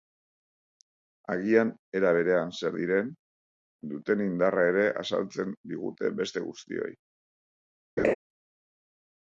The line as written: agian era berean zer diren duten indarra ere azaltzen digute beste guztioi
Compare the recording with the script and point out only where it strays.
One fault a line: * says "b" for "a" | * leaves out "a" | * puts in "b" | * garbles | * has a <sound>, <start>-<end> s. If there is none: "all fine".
* has a laugh, 8.0-8.1 s